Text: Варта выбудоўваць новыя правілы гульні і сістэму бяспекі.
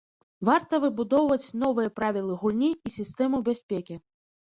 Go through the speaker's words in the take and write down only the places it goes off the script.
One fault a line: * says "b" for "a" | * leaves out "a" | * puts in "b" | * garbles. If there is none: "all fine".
all fine